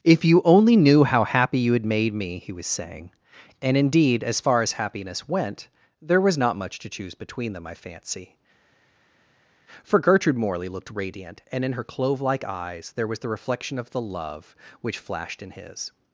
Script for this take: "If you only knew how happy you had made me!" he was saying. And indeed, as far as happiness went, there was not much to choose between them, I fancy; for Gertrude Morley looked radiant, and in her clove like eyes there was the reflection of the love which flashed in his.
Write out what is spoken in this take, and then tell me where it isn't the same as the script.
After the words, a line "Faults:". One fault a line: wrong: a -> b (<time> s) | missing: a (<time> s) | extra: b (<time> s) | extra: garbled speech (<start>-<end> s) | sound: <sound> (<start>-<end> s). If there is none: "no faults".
"If you only knew how happy you had made me!" he was saying. And indeed, as far as happiness went, there was not much to choose between them, I fancy; for Gertrude Morley looked radiant, and in her clove like eyes there was the reflection of the love which flashed in his.
Faults:
no faults